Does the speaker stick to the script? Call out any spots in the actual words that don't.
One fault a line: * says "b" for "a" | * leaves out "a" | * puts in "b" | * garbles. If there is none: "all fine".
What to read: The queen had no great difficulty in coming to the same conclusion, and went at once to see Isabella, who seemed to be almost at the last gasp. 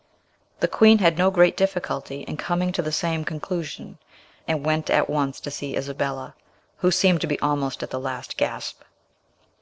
all fine